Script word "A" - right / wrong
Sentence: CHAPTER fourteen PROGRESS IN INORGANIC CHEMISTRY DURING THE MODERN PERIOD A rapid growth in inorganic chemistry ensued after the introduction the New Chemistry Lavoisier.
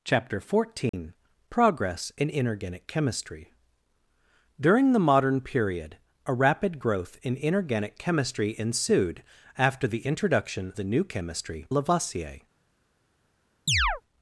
right